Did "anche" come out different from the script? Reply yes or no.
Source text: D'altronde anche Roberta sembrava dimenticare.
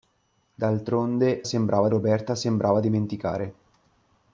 yes